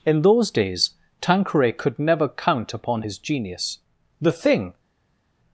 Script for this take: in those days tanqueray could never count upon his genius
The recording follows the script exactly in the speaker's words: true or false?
false